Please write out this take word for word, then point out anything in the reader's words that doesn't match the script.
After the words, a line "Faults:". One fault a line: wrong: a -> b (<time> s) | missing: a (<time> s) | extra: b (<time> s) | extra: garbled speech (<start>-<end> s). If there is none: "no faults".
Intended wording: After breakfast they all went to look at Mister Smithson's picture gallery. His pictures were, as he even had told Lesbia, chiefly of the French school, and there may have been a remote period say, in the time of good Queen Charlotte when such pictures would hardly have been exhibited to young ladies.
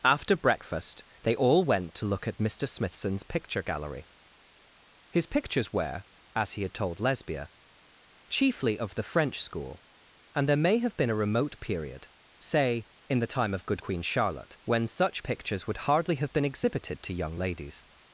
After breakfast they all went to look at Mister Smithson's picture gallery. His pictures were, as he had told Lesbia, chiefly of the French school, and there may have been a remote period say, in the time of good Queen Charlotte when such pictures would hardly have been exhibited to young ladies.
Faults:
missing: even (6.6 s)